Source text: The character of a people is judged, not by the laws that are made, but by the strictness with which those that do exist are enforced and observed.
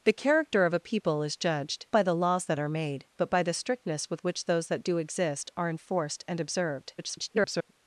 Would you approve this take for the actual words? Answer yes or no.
no